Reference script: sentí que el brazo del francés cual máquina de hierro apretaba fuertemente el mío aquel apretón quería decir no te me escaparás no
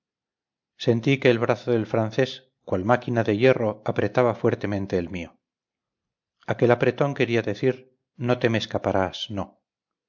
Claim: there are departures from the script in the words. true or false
false